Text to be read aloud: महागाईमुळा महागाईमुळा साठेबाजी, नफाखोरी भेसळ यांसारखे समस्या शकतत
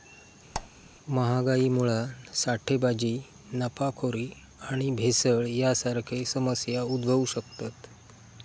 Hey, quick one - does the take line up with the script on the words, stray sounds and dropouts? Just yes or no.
no